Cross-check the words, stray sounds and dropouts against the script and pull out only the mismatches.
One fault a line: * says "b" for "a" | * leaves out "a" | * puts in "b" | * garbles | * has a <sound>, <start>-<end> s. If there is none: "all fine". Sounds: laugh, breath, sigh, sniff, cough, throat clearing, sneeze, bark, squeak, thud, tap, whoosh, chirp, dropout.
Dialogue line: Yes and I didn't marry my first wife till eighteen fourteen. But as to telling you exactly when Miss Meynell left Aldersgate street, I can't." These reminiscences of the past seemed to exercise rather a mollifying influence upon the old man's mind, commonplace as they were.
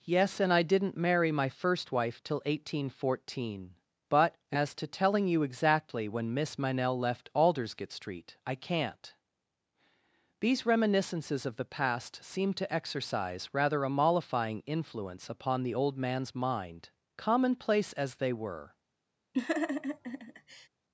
* has a laugh, 19.3-20.7 s